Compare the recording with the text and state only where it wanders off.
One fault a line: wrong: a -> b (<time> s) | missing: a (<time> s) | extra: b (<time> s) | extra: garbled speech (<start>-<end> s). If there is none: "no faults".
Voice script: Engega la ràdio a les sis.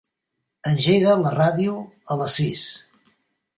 no faults